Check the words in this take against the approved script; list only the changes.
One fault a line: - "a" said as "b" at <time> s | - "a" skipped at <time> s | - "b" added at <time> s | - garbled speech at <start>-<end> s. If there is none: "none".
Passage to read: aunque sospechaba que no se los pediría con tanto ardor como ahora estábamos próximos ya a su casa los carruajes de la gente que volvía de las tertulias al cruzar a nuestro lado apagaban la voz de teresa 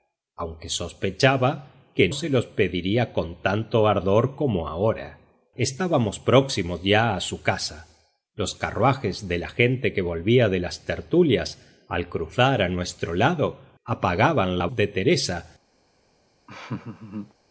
- "no" skipped at 2.1 s
- "voz" skipped at 14.7 s